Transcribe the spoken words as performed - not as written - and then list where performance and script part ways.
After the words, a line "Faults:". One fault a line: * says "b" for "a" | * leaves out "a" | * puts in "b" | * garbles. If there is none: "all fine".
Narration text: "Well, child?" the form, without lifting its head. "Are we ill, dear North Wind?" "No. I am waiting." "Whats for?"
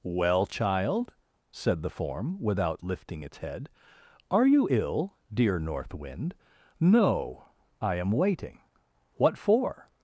"Well, child?" said the form, without lifting its head. "Are you ill, dear North Wind?" "No. I am waiting." "What for?"
Faults:
* puts in "said"
* says "you" for "we"
* says "What" for "Whats"